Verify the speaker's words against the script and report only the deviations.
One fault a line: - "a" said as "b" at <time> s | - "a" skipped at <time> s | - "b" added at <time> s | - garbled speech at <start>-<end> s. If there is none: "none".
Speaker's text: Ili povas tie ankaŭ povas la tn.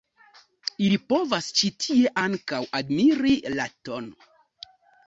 - "ĉi" added at 1.6 s
- "povas" said as "admiri" at 2.8 s